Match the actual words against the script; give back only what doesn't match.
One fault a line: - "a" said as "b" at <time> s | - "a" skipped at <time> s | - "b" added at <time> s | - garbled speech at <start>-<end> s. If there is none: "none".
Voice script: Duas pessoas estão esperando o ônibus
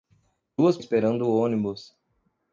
- "pessoas estão" skipped at 0.8 s